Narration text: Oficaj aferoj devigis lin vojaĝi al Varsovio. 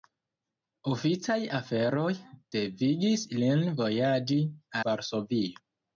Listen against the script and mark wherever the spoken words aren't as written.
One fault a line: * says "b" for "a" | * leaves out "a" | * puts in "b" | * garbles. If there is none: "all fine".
* leaves out "al"